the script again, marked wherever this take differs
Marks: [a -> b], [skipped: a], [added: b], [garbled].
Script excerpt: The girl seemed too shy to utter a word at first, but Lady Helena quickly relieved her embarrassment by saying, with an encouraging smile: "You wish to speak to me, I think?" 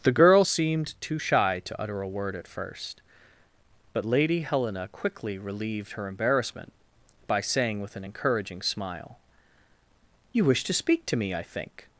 The girl seemed too shy to utter a word at first, but Lady Helena quickly relieved her embarrassment by saying, with an encouraging smile: "You wish to speak to me, I think?"